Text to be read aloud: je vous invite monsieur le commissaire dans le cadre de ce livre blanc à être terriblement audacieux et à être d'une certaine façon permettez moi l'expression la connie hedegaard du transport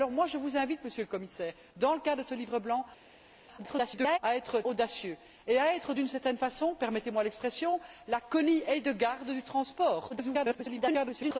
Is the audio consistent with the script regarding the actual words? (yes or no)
no